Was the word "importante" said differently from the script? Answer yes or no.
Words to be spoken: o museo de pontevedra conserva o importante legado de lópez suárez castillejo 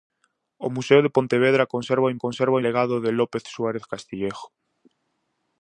yes